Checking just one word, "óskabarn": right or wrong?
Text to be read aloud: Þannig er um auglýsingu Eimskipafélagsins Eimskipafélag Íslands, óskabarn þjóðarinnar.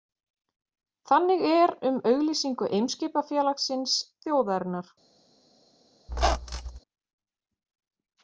wrong